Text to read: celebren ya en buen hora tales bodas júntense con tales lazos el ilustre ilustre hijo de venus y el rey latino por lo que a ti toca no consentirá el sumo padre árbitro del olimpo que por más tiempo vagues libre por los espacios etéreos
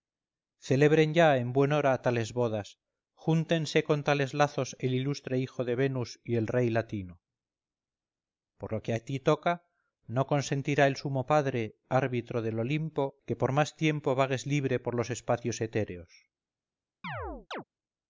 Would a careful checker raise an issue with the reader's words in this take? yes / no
yes